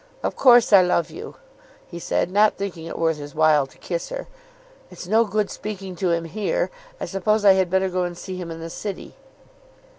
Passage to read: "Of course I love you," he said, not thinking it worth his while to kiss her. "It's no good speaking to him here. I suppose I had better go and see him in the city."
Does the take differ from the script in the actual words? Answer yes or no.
no